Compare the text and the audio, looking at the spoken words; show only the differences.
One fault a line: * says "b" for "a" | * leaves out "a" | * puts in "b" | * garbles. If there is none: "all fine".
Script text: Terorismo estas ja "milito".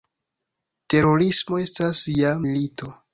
all fine